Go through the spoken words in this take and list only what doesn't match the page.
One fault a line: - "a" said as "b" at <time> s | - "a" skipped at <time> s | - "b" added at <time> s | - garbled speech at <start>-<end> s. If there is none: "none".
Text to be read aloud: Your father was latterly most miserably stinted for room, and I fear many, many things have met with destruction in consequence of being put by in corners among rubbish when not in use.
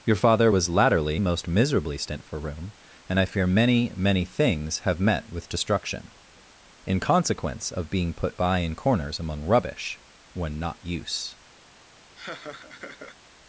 - "stinted" said as "stint" at 2.0 s
- "in" skipped at 10.8 s